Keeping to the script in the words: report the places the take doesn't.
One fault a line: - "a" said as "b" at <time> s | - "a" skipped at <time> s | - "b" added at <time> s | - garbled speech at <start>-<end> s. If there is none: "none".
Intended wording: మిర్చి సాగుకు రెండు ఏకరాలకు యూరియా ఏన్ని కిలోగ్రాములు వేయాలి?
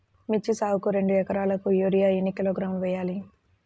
none